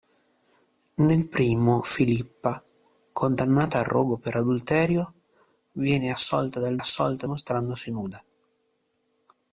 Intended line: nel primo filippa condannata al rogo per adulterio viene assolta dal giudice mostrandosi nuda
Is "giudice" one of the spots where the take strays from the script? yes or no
yes